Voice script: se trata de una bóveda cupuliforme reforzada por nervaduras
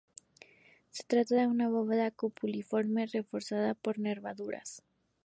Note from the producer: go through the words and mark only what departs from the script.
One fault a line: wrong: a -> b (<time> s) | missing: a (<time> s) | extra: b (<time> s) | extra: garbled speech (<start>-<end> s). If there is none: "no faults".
no faults